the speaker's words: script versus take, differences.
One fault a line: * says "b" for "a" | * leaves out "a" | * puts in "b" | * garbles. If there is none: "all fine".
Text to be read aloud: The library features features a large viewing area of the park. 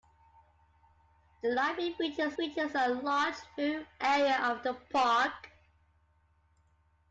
all fine